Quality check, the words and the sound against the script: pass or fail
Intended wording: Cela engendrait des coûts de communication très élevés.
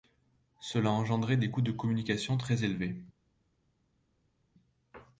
pass